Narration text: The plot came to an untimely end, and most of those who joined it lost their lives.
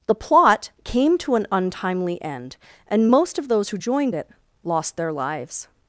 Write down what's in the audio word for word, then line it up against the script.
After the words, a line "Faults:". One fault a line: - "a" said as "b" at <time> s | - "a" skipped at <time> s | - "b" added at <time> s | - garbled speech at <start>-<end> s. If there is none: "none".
The plot came to an untimely end, and most of those who joined it lost their lives.
Faults:
none